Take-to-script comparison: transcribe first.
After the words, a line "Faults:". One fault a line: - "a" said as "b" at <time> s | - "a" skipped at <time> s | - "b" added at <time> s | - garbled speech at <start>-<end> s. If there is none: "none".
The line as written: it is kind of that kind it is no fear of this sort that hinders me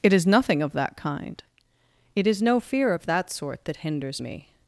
it is nothing of that kind it is no fear of that sort that hinders me
Faults:
- "kind" said as "nothing" at 0.2 s
- "this" said as "that" at 3.1 s